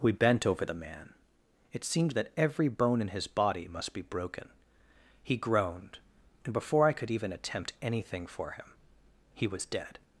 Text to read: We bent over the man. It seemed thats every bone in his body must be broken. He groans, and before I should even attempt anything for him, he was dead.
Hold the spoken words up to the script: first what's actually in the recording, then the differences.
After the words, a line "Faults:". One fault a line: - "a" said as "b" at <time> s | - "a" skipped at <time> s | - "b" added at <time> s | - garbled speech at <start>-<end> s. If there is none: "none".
We bent over the man. It seemed that every bone in his body must be broken. He groaned, and before I could even attempt anything for him, he was dead.
Faults:
- "thats" said as "that" at 2.1 s
- "groans" said as "groaned" at 5.4 s
- "should" said as "could" at 6.9 s